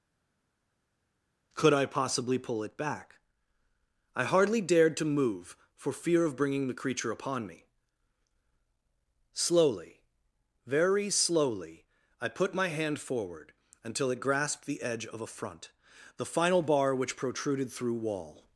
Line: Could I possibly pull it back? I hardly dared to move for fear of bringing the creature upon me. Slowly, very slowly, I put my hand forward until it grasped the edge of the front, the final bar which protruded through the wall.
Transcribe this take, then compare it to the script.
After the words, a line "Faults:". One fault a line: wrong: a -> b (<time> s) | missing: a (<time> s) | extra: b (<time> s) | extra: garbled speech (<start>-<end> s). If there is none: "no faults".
Could I possibly pull it back? I hardly dared to move for fear of bringing the creature upon me. Slowly, very slowly, I put my hand forward until it grasped the edge of a front, the final bar which protruded through wall.
Faults:
wrong: the -> a (15.2 s)
missing: the (17.9 s)